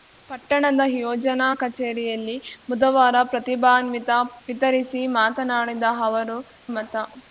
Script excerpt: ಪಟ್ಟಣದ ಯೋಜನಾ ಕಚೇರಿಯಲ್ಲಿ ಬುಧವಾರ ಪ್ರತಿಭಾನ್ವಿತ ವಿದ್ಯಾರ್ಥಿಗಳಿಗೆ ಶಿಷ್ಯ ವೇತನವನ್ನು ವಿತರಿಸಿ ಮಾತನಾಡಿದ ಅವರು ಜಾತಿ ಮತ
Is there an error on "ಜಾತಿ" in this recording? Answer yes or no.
yes